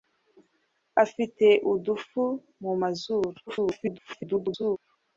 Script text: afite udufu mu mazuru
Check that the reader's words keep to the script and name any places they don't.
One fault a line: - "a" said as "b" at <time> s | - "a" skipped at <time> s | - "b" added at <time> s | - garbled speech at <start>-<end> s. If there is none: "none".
- garbled speech at 3.5-4.8 s